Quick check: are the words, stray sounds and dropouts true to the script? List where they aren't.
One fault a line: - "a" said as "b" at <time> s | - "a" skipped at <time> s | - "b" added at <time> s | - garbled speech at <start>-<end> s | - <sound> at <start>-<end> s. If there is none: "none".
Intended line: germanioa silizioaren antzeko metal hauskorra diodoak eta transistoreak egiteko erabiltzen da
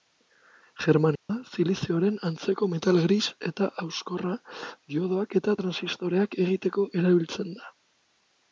- dropout at 1.2-1.3 s
- "gris eta" added at 3.1 s